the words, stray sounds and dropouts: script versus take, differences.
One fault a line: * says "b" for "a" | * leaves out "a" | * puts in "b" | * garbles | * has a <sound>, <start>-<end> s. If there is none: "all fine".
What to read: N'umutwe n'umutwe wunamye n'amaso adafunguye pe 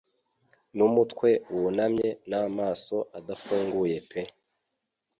* leaves out "n'umutwe"